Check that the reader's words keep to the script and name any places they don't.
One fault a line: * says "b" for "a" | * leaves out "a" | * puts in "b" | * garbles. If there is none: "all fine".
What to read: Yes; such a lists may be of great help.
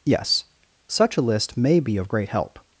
* says "list" for "lists"